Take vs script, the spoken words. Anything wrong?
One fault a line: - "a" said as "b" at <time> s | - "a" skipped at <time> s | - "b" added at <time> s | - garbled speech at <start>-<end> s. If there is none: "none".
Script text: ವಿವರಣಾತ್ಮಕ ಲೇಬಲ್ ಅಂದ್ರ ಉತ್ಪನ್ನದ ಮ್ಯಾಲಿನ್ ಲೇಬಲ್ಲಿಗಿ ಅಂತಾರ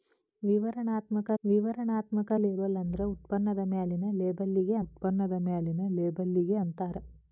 - "ವಿವರಣಾತ್ಮಕ" added at 1.4 s
- "ಉತ್ಪನ್ನದ ಮ್ಯಾಲಿನ್ ಲೇಬಲ್ಲಿಗಿ" added at 4.8 s